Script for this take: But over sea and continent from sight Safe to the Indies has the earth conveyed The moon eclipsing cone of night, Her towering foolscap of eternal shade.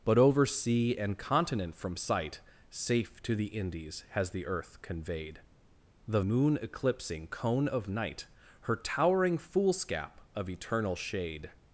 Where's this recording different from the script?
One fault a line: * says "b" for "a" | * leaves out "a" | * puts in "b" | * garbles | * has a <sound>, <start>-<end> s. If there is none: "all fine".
all fine